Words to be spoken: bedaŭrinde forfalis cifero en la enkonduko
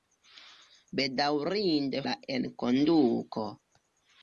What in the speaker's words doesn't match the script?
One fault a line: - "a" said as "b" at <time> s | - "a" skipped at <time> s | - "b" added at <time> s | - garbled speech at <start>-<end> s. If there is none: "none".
- "forfalis cifero en" skipped at 2.0 s